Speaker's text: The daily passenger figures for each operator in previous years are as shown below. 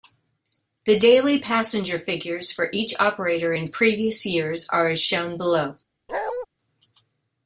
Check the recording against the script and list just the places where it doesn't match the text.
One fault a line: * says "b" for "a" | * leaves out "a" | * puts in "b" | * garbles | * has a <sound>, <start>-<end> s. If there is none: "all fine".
* has a bark, 6.1-6.5 s